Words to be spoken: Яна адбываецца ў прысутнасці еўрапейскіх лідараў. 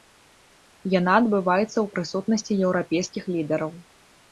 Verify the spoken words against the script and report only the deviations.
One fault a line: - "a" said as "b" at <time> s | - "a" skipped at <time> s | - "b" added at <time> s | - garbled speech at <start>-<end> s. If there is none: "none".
none